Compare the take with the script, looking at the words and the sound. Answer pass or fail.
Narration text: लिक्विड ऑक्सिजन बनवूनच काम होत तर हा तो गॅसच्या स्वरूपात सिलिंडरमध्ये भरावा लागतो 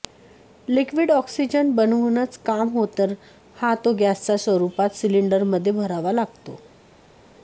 pass